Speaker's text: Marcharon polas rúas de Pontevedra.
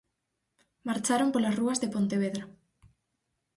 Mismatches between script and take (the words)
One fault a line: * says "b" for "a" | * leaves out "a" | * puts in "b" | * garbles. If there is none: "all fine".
all fine